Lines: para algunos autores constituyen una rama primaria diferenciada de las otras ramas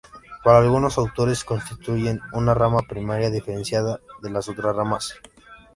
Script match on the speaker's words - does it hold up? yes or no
yes